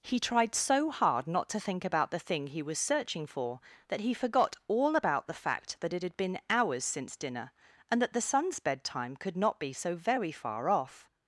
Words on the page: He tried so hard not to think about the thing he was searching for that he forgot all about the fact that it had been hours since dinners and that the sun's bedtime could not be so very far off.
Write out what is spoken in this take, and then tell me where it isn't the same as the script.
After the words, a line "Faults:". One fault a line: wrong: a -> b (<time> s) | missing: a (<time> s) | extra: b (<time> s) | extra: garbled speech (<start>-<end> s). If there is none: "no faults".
He tried so hard not to think about the thing he was searching for that he forgot all about the fact that it had been hours since dinner and that the sun's bedtime could not be so very far off.
Faults:
wrong: dinners -> dinner (7.2 s)